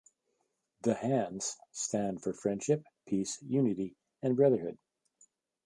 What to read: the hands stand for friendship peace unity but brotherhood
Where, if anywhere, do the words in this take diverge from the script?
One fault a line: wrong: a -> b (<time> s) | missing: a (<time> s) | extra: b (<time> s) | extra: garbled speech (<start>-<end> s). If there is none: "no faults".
wrong: but -> and (4.2 s)